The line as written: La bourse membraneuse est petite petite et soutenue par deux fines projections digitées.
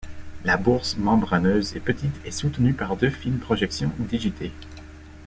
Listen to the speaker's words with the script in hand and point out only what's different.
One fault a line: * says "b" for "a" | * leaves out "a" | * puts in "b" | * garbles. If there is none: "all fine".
* leaves out "petite"